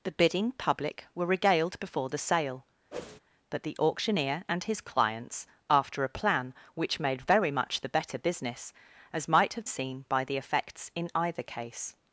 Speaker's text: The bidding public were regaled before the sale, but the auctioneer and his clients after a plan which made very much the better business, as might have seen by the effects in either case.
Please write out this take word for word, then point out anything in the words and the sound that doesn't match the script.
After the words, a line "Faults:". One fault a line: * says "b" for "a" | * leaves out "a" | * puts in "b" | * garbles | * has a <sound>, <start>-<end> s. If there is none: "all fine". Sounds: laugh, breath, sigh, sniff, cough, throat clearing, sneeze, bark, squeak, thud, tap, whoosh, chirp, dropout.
The bidding public were regaled before the sale, but the auctioneer and his clients after a plan which made very much the better business, as might have seen by the effects in either case.
Faults:
* has a whoosh, 2.9-3.2 s